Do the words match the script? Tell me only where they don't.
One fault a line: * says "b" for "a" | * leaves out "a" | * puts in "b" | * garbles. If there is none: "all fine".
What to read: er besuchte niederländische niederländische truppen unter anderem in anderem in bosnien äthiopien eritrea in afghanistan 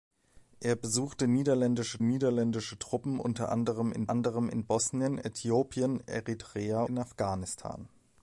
all fine